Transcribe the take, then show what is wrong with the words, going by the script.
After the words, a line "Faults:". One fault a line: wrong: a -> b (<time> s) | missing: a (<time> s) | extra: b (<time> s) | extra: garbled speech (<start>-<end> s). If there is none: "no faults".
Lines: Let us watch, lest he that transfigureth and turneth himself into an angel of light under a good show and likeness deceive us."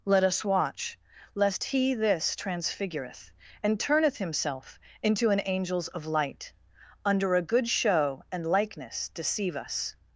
Let us watch, lest he this transfigureth and turneth himself into an angels of light under a good show and likeness deceive us."
Faults:
wrong: that -> this (1.9 s)
wrong: angel -> angels (5.4 s)